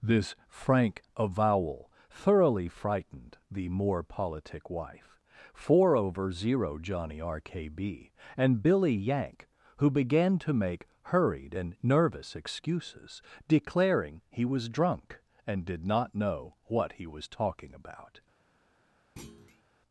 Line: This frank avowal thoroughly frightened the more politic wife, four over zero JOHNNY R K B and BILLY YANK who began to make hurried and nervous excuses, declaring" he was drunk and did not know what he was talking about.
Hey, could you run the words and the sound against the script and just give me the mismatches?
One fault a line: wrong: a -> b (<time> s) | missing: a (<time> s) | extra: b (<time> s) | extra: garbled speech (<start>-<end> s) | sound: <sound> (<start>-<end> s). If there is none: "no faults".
sound: thud (19.2-19.6 s)